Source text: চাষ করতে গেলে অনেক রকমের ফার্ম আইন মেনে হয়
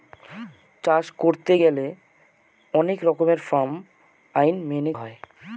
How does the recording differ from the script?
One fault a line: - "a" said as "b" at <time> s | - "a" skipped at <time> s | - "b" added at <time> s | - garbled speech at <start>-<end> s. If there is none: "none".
none